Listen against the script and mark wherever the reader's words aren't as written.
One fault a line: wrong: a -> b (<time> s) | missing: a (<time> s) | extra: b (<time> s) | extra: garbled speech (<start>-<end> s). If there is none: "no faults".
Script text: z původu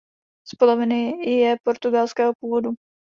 extra: poloviny je portugalského (0.6 s)